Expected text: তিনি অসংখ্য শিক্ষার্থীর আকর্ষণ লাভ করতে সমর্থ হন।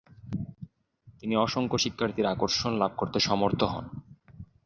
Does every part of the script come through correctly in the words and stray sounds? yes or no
yes